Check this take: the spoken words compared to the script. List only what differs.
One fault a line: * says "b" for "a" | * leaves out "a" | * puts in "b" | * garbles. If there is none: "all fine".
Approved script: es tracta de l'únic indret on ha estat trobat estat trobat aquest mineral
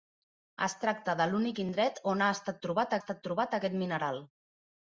all fine